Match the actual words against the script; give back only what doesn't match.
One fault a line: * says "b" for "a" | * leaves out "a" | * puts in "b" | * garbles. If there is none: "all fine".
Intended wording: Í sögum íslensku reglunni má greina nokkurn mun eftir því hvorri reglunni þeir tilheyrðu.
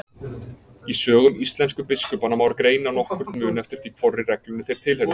* says "biskupanna" for "reglunni"